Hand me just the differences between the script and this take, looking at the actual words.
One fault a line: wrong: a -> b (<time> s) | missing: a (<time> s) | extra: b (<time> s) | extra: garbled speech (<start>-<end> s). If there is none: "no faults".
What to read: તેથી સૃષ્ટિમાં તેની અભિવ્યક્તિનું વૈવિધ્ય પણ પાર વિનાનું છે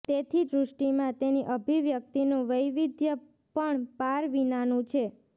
no faults